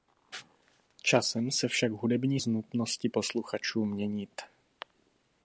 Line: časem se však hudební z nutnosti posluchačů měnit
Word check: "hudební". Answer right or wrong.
right